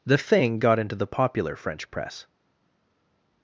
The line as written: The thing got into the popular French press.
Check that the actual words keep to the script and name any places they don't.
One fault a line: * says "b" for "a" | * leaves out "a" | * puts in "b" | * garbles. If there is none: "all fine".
all fine